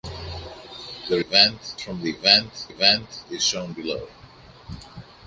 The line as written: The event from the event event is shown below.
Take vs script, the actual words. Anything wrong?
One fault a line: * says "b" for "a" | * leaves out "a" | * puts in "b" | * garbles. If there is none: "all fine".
all fine